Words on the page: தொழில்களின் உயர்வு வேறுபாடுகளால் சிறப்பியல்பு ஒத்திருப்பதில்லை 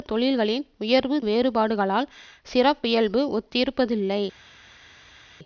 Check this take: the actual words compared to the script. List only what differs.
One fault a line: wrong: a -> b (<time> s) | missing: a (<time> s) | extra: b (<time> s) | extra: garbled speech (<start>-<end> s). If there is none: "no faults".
no faults